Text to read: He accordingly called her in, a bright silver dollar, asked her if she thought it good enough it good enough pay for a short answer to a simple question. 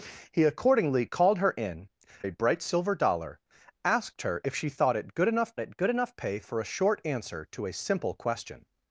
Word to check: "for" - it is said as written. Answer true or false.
true